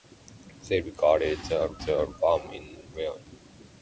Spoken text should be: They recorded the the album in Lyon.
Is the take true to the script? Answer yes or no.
yes